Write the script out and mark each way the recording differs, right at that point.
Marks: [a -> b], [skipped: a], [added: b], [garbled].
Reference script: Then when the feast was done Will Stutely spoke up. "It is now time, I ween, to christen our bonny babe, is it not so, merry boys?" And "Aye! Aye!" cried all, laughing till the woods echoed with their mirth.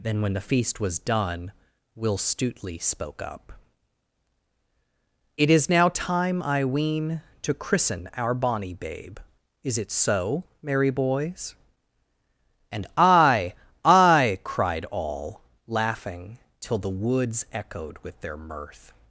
Then when the feast was done Will Stutely spoke up. "It is now time, I ween, to christen our bonny babe, is it [skipped: not] so, merry boys?" And "Aye! Aye!" cried all, laughing till the woods echoed with their mirth.